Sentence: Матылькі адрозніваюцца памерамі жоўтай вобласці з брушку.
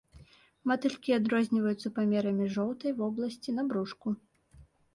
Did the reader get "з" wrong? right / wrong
wrong